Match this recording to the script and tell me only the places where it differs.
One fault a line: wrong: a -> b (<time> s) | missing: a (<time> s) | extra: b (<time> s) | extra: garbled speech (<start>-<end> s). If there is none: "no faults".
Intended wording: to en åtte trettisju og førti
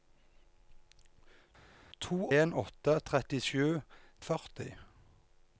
no faults